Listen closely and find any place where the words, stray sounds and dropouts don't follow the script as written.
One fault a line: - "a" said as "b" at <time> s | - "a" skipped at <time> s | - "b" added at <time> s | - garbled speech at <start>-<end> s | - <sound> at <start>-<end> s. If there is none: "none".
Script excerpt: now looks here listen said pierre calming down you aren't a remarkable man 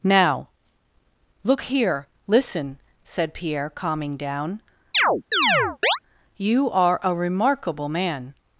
- "looks" said as "look" at 1.4 s
- chirp at 4.9-6.0 s
- "aren't" said as "are" at 6.7 s